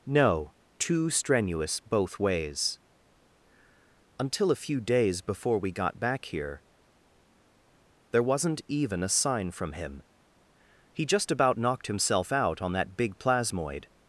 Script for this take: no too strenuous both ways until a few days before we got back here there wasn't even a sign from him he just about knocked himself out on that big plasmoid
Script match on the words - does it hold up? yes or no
yes